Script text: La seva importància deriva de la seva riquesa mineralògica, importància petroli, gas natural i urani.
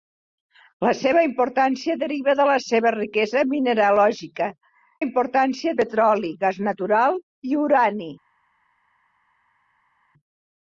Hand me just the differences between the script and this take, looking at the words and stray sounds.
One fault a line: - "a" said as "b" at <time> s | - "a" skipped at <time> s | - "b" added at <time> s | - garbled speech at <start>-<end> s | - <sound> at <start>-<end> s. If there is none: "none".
none